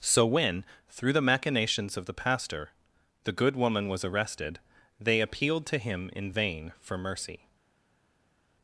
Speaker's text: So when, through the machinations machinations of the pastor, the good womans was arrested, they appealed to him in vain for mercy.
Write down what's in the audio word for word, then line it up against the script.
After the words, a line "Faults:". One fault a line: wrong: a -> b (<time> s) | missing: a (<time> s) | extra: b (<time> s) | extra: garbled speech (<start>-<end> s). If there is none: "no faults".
So when, through the machinations of the pastor, the good woman was arrested, they appealed to him in vain for mercy.
Faults:
missing: machinations (1.9 s)
wrong: womans -> woman (3.5 s)